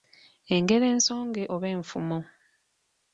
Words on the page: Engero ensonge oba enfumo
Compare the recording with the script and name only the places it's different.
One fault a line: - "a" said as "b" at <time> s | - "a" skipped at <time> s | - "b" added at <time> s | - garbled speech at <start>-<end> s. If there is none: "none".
none